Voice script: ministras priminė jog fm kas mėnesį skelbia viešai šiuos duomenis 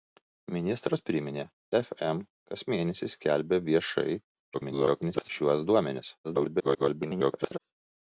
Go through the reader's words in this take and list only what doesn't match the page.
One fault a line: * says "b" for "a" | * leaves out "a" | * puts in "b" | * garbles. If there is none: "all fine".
* leaves out "jog"
* garbles
* garbles